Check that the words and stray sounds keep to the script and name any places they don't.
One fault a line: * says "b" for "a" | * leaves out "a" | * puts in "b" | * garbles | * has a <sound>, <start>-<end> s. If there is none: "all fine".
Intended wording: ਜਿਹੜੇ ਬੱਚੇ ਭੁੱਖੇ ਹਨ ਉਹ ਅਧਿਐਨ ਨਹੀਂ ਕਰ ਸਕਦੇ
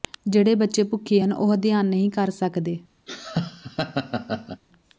* has a laugh, 3.1-4.6 s